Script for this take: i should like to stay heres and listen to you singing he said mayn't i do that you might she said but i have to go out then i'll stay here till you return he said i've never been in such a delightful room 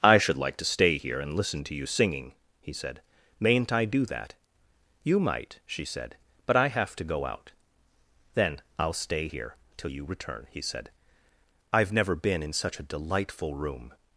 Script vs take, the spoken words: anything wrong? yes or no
yes